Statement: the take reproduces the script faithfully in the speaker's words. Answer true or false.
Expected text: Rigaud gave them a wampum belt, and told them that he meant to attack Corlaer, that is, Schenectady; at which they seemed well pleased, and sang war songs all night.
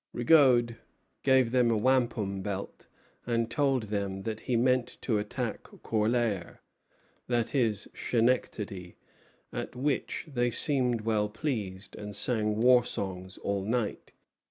true